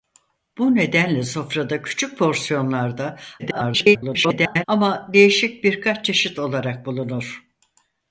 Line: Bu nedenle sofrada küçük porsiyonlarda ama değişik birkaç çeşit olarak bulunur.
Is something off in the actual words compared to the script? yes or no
yes